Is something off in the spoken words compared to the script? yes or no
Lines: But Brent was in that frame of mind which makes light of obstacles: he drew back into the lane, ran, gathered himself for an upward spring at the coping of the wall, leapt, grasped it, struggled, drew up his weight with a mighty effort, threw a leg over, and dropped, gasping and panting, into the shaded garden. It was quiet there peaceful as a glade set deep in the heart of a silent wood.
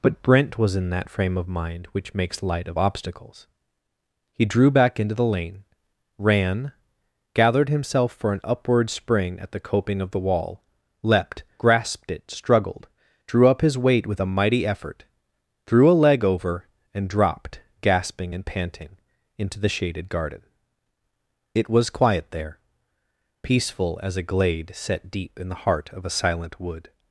no